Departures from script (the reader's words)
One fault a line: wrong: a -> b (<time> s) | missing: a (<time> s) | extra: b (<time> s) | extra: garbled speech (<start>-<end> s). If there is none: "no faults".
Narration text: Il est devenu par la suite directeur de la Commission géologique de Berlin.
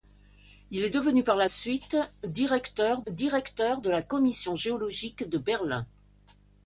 extra: directeur (3.1 s)